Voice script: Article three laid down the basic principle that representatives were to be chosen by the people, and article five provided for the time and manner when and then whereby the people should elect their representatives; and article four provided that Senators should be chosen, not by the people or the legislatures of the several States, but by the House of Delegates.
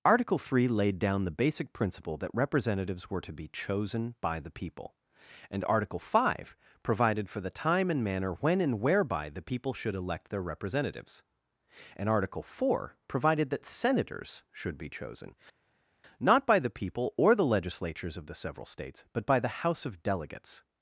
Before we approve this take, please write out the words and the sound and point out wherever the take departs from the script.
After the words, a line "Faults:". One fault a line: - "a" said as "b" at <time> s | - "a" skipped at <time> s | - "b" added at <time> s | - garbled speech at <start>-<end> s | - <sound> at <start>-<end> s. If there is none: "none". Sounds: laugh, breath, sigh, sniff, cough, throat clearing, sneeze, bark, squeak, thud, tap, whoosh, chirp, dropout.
Article three laid down the basic principle that representatives were to be chosen by the people, and article five provided for the time and manner when and whereby the people should elect their representatives; and article four provided that Senators should be chosen, not by the people or the legislatures of the several States, but by the House of Delegates.
Faults:
- "then" skipped at 8.8 s